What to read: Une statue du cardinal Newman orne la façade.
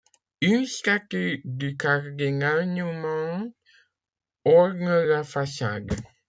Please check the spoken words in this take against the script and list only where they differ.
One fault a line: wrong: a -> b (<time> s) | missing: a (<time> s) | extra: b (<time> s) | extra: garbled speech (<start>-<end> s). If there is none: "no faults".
no faults